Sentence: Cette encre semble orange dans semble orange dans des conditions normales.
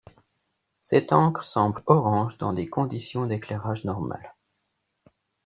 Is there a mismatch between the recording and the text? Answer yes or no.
yes